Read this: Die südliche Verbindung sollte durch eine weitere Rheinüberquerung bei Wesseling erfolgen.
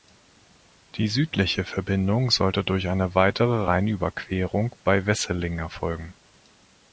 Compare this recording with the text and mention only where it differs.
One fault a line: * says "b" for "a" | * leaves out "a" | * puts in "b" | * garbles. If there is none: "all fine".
all fine